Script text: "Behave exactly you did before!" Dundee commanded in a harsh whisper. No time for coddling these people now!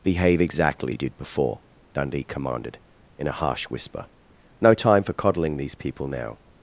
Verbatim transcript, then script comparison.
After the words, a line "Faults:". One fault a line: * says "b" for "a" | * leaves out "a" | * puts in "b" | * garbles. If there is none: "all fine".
"Behave exactly you did before!" Dundee commanded in a harsh whisper. No time for coddling these people now!
Faults:
all fine